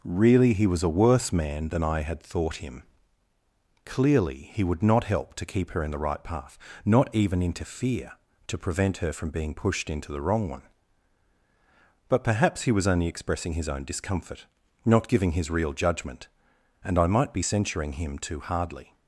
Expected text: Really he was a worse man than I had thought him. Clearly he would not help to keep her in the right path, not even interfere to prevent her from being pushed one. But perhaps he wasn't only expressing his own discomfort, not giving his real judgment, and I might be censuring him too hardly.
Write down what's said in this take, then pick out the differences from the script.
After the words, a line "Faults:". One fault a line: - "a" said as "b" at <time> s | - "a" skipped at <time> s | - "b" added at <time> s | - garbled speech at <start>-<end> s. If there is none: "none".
Really he was a worse man than I had thought him. Clearly he would not help to keep her in the right path, not even interfere to prevent her from being pushed into the wrong one. But perhaps he was only expressing his own discomfort, not giving his real judgment, and I might be censuring him too hardly.
Faults:
- "into the wrong" added at 9.9 s
- "wasn't" said as "was" at 12.7 s